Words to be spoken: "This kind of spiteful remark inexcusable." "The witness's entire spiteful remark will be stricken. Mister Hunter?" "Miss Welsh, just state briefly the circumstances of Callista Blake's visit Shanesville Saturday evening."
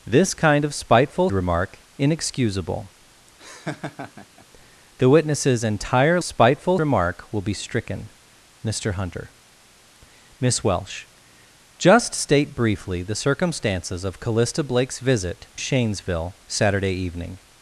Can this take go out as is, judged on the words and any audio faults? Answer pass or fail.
fail